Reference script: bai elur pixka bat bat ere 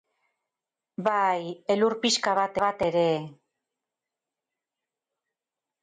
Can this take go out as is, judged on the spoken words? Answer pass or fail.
pass